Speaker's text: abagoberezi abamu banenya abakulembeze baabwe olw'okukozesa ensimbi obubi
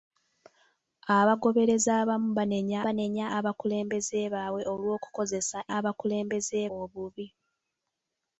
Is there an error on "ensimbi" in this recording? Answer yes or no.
yes